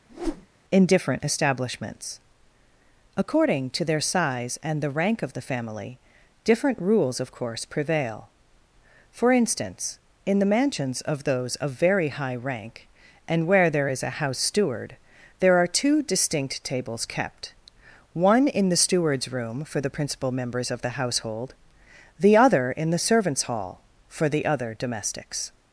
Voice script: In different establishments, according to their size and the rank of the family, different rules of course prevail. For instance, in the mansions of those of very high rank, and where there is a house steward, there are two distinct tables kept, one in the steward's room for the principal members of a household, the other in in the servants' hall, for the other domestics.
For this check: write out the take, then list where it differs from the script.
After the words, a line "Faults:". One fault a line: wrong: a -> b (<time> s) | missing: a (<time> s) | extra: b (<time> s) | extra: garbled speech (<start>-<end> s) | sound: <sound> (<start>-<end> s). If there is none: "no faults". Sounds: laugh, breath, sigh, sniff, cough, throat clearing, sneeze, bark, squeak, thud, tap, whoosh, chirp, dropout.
In different establishments, according to their size and the rank of the family, different rules of course prevail. For instance, in the mansions of those of very high rank, and where there is a house steward, there are two distinct tables kept, one in the steward's room for the principal members of the household, the other in the servants' hall, for the other domestics.
Faults:
sound: whoosh (0.1-0.5 s)
wrong: a -> the (20.8 s)
missing: in (22.9 s)